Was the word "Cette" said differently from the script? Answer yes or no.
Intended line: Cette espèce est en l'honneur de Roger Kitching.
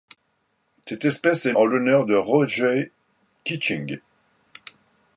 no